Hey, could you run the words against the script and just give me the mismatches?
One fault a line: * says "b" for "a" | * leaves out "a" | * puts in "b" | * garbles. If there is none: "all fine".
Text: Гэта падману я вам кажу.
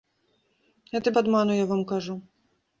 all fine